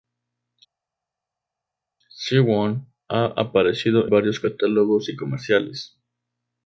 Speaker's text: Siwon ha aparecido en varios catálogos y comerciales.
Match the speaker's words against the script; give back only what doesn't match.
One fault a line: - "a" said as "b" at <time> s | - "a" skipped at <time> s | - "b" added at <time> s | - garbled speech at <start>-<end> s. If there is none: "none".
- "en" skipped at 4.1 s